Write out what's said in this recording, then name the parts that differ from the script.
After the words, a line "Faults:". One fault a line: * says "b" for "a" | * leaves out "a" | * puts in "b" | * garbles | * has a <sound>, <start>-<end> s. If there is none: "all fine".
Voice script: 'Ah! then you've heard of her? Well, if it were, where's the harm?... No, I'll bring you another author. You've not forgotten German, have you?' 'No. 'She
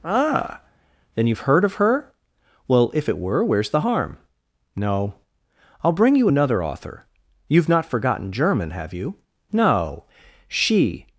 'Ah! then you've heard of her? Well, if it were, where's the harm?... No, I'll bring you another author. You've not forgotten German, have you?' 'No. 'She
Faults:
all fine